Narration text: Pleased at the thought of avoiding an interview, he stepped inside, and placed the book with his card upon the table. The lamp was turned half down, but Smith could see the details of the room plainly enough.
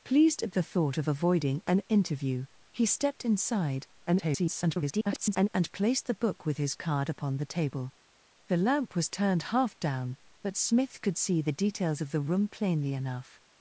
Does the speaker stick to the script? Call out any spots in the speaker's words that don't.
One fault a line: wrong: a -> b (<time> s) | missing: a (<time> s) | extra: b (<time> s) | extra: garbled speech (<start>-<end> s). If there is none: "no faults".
extra: garbled speech (4.1-5.5 s)